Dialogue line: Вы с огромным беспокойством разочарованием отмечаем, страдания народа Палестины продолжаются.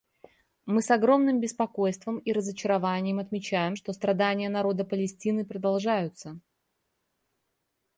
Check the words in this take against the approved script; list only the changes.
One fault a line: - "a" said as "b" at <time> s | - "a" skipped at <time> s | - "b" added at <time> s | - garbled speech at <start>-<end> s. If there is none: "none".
- "Вы" said as "Мы" at 0.7 s
- "и" added at 2.2 s
- "что" added at 3.7 s